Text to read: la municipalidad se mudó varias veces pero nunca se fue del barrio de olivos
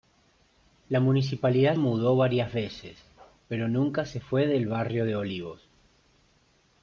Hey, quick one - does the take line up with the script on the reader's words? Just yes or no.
no